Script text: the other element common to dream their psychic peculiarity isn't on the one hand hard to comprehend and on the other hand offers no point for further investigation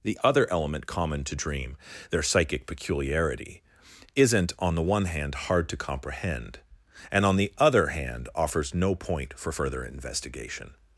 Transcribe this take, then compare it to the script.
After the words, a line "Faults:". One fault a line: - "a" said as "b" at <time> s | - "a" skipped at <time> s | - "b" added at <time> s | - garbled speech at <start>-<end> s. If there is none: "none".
the other element common to dream their psychic peculiarity isn't on the one hand hard to comprehend and on the other hand offers no point for further investigation
Faults:
none